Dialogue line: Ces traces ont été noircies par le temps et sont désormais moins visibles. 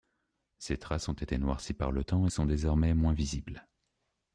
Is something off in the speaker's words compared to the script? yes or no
no